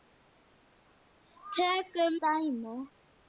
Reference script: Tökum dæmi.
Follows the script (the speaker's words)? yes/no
yes